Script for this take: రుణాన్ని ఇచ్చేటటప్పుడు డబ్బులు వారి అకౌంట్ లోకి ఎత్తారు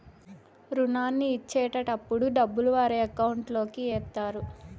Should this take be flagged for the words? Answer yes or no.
no